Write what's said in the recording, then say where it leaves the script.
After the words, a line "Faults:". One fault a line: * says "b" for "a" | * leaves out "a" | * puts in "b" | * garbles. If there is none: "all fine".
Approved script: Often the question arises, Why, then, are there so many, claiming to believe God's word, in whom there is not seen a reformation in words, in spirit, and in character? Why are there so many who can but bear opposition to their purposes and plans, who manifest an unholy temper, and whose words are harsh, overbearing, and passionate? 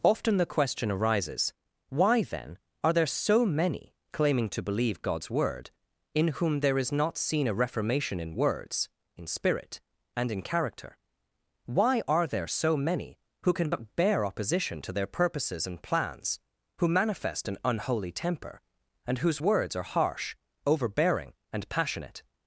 Often the question arises, Why, then, are there so many, claiming to believe God's word, in whom there is not seen a reformation in words, in spirit, and in character? Why are there so many who can but bear opposition to their purposes and plans, who manifest an unholy temper, and whose words are harsh, overbearing, and passionate?
Faults:
all fine